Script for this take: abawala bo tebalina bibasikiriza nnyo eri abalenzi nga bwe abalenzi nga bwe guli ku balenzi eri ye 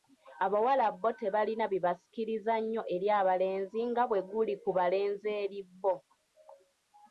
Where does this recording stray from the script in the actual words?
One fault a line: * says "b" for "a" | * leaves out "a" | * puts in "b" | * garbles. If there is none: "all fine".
* leaves out "abalenzi nga bwe"
* says "bo" for "ye"